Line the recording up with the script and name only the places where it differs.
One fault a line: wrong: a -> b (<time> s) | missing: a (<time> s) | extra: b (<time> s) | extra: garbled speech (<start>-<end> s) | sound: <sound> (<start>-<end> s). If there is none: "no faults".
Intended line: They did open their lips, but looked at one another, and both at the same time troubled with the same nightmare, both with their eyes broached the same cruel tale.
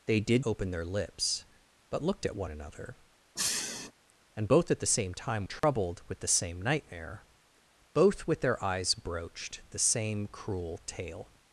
sound: sniff (3.4-3.9 s)
sound: dropout (5.6-5.6 s)